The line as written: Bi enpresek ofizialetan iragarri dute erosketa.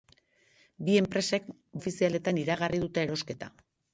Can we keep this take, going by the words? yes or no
yes